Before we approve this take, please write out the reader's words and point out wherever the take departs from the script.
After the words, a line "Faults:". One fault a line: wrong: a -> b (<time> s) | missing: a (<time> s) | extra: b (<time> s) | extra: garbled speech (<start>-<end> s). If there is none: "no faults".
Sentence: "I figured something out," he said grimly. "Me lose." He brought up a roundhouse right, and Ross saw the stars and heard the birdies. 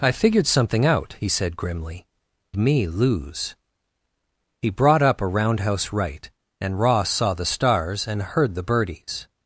"I figured something out," he said grimly. "Me lose." He brought up a roundhouse right, and Ross saw the stars and heard the birdies.
Faults:
no faults